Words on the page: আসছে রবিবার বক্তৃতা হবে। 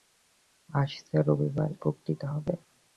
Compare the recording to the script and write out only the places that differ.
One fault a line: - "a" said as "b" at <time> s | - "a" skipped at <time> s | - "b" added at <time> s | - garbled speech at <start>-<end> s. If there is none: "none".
none